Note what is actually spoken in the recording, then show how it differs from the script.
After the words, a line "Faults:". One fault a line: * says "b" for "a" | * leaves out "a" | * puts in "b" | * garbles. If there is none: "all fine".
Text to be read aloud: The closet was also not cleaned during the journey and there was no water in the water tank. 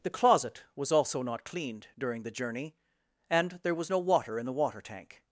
The closet was also not cleaned during the journey and there was no water in the water tank.
Faults:
all fine